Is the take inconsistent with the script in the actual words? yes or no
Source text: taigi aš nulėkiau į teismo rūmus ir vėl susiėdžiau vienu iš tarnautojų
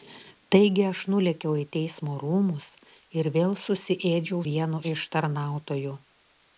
no